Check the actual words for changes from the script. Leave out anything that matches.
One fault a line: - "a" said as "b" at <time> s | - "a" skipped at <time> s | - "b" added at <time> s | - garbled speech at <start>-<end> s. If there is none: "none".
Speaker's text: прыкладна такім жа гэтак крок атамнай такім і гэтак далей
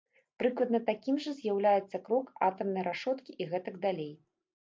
- "гэтак" said as "з'яўляецца" at 1.4 s
- "такім" said as "рашоткі" at 2.9 s